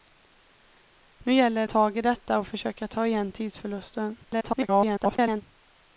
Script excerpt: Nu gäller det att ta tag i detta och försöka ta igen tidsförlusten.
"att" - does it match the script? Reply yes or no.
no